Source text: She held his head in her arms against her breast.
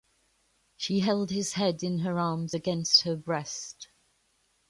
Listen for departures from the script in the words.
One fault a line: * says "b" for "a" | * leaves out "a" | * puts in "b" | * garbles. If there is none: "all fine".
all fine